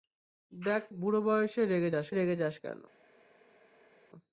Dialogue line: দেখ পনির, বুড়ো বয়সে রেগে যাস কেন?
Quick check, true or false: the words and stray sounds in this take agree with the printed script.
false